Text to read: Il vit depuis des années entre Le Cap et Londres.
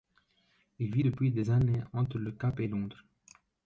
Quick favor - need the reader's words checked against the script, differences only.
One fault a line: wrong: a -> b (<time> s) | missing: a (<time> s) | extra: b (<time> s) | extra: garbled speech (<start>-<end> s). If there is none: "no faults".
no faults